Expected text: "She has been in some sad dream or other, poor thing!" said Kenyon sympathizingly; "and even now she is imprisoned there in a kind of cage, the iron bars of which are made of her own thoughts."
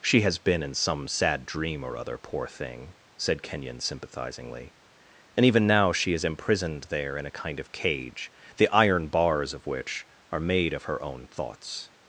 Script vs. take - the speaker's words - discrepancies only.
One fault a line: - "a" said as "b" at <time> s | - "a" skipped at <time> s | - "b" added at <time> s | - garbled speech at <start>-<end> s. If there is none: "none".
none